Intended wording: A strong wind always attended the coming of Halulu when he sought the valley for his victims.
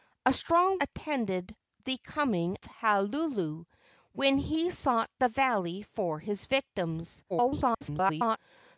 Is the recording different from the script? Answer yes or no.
yes